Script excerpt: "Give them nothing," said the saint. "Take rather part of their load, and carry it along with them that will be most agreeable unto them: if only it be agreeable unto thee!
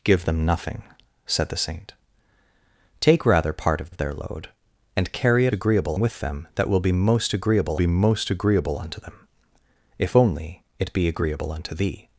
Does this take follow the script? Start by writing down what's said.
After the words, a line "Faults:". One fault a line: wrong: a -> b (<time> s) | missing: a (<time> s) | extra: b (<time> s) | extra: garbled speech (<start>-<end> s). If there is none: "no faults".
"Give them nothing," said the saint. "Take rather part of of their load, and carry it agreeable with them that will be most agreeable be most agreeable unto them: if only it be agreeable unto thee!
Faults:
extra: of (3.9 s)
wrong: along -> agreeable (5.5 s)
extra: be most agreeable (7.7 s)